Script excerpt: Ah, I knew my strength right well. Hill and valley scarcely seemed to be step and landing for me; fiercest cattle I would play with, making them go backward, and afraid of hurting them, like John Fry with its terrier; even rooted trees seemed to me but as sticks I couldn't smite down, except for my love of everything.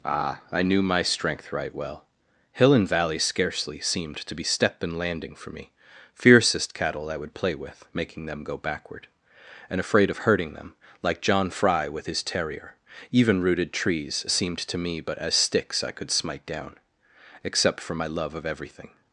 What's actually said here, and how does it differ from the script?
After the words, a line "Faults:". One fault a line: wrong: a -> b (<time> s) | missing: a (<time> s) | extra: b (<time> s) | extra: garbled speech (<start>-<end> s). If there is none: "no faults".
Ah, I knew my strength right well. Hill and valley scarcely seemed to be step and landing for me; fiercest cattle I would play with, making them go backward, and afraid of hurting them, like John Fry with his terrier; even rooted trees seemed to me but as sticks I could smite down, except for my love of everything.
Faults:
wrong: its -> his (12.0 s)
wrong: couldn't -> could (15.9 s)